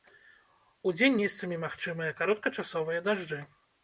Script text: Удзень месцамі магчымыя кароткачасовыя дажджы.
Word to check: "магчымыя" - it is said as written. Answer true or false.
true